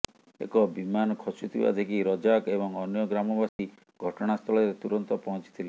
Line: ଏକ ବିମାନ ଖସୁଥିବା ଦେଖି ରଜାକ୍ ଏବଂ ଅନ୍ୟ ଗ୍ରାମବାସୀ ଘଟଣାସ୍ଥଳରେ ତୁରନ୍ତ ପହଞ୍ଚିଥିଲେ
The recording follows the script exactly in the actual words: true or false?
true